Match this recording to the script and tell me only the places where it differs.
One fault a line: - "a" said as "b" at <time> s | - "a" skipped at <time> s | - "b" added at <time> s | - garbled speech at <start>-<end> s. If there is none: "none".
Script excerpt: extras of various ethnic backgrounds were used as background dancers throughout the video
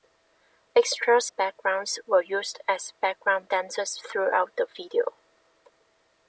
- "of various ethnic" skipped at 1.3 s